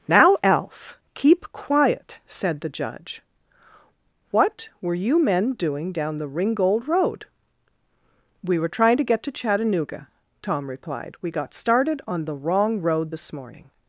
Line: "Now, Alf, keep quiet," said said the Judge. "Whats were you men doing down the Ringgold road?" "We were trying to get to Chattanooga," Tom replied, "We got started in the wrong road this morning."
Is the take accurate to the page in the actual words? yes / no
no